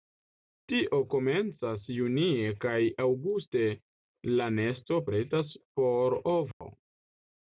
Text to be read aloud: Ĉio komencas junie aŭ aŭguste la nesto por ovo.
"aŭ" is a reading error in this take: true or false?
true